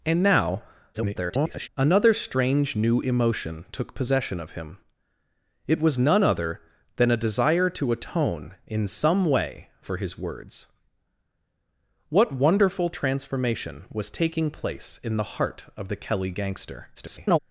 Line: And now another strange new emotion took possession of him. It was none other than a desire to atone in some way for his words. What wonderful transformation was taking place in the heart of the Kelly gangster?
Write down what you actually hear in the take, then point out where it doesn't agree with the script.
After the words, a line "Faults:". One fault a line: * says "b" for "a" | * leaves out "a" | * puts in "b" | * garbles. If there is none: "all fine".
And now [garbled] another strange new emotion took possession of him. It was none other than a desire to atone in some way for his words. What wonderful transformation was taking place in the heart of the Kelly gangster? [garbled]
Faults:
* garbles
* garbles